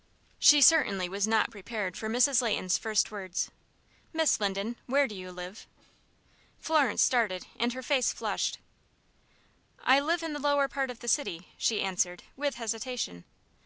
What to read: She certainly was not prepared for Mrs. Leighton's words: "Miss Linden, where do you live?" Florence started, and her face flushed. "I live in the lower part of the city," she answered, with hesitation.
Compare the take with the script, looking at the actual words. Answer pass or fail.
fail